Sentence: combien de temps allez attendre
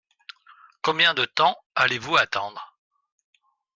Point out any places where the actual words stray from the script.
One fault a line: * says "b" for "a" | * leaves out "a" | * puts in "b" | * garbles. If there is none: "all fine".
* puts in "vous"